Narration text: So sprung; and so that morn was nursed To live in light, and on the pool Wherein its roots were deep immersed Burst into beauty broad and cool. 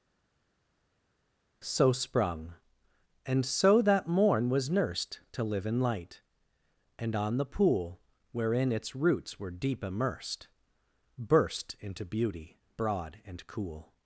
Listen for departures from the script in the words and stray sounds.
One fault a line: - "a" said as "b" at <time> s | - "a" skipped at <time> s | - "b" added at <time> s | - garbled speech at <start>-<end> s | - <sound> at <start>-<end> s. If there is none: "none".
none